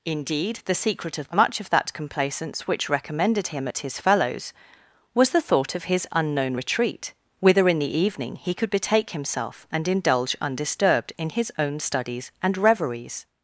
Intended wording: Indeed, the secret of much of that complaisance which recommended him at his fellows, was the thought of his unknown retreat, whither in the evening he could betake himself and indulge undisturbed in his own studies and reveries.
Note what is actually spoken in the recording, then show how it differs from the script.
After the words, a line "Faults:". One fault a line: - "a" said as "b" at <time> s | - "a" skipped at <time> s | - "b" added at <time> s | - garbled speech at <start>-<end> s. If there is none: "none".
Indeed, the secret of much of that complaisance which recommended him at his fellows, was the thought of his unknown retreat, whither in the evening he could betake himself and indulge undisturbed in his own studies and reveries.
Faults:
none